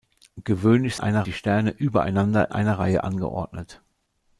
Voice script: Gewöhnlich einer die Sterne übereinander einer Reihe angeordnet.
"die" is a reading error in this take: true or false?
false